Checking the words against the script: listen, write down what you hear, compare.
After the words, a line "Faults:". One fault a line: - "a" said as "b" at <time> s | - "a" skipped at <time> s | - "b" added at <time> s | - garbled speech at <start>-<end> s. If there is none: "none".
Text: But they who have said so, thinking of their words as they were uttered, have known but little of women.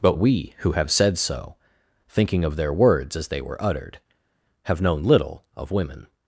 But we who have said so, thinking of their words as they were uttered, have known little of women.
Faults:
- "they" said as "we" at 0.2 s
- "but" skipped at 5.0 s